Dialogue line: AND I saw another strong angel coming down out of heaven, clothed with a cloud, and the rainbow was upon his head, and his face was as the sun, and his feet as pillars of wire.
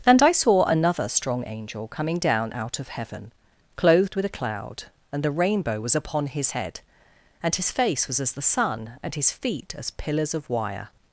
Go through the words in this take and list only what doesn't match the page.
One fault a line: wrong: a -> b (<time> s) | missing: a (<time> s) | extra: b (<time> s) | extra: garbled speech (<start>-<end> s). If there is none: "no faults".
no faults